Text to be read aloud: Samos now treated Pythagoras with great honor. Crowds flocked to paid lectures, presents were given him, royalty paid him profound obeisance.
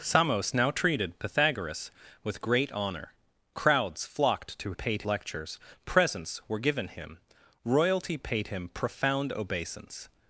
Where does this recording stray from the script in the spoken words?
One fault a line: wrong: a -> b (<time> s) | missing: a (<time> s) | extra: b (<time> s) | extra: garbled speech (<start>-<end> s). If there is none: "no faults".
no faults